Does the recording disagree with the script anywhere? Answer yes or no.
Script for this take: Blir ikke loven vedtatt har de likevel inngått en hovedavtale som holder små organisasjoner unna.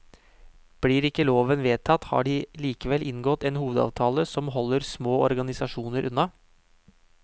no